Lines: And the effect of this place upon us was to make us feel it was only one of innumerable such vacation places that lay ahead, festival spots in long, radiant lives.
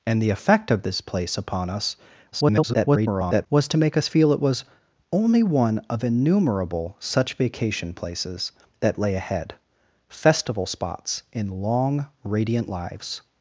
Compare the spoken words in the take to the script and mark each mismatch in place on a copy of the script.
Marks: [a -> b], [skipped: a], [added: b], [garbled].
And the effect of this place upon us [garbled] was to make us feel it was only one of innumerable such vacation places that lay ahead, festival spots in long, radiant lives.